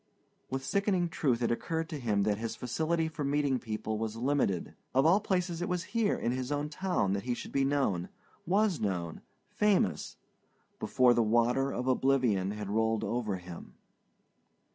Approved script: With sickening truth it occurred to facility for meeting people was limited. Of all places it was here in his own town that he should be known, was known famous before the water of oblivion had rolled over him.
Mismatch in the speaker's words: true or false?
true